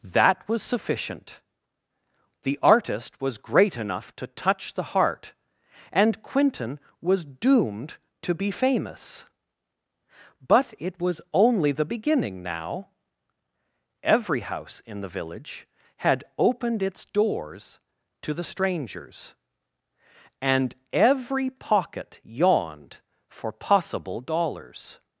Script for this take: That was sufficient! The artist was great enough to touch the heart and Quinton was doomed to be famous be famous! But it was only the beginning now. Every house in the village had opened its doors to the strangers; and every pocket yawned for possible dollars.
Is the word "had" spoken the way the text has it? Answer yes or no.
yes